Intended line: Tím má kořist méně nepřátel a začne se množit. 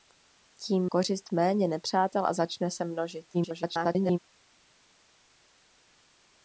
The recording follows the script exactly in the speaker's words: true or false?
false